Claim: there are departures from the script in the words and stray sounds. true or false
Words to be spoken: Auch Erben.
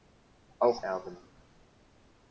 false